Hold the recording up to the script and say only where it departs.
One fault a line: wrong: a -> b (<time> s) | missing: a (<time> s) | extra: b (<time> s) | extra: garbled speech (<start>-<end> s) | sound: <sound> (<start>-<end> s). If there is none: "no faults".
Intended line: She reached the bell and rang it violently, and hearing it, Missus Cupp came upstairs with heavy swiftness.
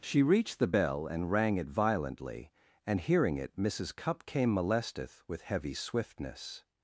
wrong: upstairs -> molesteth (4.5 s)